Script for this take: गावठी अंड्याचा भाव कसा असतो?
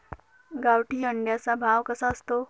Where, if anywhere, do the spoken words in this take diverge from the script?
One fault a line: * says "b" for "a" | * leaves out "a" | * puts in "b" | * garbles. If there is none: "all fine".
all fine